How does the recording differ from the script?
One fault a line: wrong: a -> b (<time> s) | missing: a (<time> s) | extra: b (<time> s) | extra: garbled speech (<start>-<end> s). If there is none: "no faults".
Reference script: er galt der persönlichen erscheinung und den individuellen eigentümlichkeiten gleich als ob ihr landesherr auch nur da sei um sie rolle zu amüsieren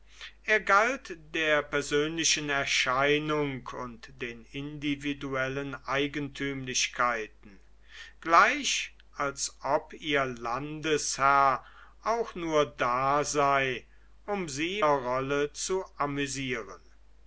no faults